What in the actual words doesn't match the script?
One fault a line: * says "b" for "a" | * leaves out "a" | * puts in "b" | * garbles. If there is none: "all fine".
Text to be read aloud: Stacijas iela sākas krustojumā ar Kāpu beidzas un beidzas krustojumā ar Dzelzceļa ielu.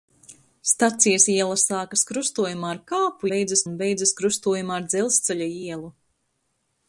all fine